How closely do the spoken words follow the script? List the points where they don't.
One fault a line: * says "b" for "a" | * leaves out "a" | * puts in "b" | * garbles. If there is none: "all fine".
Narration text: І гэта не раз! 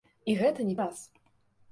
all fine